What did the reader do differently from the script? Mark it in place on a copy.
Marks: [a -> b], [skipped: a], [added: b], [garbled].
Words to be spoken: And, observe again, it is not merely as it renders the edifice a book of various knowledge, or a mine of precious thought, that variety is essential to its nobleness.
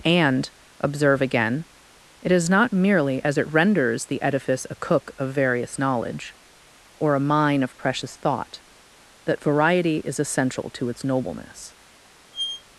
And, observe again, it is not merely as it renders the edifice a [book -> cook] of various knowledge, or a mine of precious thought, that variety is essential to its nobleness.